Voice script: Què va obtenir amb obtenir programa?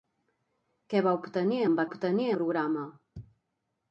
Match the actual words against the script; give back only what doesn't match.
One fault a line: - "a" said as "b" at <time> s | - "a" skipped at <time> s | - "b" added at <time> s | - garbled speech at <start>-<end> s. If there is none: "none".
none